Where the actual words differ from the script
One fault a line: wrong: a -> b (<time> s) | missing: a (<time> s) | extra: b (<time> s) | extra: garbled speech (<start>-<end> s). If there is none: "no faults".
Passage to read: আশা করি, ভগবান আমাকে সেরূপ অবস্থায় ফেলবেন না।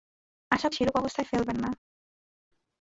missing: করি ভগবান আমাকে (0.7 s)